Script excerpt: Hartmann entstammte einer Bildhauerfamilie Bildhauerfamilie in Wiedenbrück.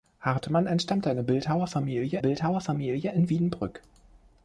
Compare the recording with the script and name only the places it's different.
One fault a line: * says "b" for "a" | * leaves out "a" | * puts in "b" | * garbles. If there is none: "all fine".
all fine